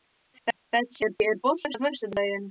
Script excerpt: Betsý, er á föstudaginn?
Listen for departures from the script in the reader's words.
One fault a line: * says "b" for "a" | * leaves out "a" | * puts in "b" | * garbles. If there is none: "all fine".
* puts in "bolti"